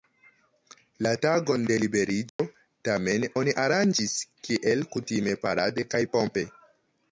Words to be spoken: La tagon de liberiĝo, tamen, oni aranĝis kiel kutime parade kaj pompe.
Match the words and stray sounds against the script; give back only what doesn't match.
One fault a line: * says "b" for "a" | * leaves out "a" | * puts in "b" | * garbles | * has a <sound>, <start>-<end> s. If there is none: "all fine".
* has a dropout, 2.3-2.4 s